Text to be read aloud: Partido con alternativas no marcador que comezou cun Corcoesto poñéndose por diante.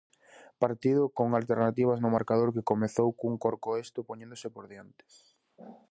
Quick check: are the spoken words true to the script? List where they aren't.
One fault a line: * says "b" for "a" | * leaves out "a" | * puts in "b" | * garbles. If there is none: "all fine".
all fine